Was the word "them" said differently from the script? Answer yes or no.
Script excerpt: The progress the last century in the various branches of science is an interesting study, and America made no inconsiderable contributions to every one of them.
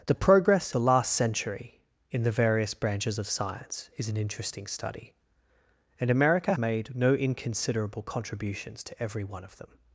no